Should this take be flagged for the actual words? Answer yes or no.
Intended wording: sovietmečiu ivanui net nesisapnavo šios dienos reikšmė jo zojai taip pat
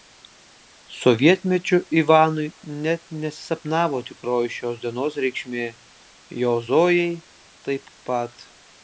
yes